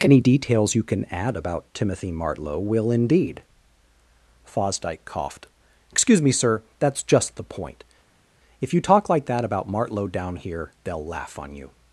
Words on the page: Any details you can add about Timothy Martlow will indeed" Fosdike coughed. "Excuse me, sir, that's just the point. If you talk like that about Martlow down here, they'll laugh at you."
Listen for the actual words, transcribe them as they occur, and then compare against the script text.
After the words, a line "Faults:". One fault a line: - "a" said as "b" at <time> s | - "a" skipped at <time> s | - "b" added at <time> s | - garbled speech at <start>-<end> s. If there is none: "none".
Any details you can add about Timothy Martlow will indeed" Fosdike coughed. "Excuse me, sir, that's just the point. If you talk like that about Martlow down here, they'll laugh on you."
Faults:
- "at" said as "on" at 11.4 s